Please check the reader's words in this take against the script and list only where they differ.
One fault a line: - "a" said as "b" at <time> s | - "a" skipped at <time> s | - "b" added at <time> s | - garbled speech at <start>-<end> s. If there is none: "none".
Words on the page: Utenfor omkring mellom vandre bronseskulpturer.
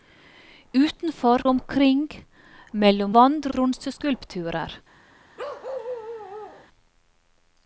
none